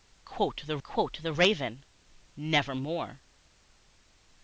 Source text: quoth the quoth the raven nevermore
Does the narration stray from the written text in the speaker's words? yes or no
no